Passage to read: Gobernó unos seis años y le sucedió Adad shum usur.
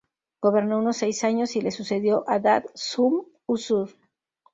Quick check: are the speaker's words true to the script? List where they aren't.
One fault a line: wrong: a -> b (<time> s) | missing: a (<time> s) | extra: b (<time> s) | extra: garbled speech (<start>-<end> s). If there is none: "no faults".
no faults